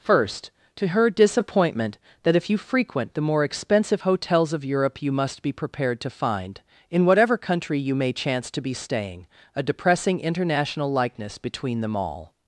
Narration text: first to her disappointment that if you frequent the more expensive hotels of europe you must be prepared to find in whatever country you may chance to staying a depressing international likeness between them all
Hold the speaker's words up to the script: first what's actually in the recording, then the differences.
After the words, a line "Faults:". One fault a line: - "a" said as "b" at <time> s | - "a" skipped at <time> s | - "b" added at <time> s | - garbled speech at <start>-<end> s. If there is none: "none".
first to her disappointment that if you frequent the more expensive hotels of europe you must be prepared to find in whatever country you may chance to be staying a depressing international likeness between them all
Faults:
- "be" added at 8.6 s